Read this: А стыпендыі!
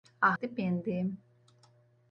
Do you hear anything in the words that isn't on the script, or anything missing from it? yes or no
no